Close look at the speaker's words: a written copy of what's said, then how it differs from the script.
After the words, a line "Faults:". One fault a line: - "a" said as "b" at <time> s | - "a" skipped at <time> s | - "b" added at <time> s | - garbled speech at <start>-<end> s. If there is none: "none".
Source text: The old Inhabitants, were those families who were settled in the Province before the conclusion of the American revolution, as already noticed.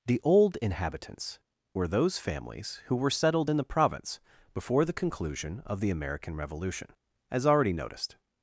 The old Inhabitants, were those families who were settled in the Province before the conclusion of the American revolution, as already noticed.
Faults:
none